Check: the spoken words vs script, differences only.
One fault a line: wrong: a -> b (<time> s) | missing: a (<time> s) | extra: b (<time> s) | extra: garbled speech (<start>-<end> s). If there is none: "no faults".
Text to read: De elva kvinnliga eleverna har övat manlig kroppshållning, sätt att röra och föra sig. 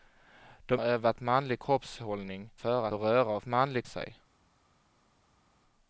missing: elva kvinnliga eleverna (0.8 s)
wrong: sätt -> föra (2.6 s)
wrong: föra -> manlig (3.4 s)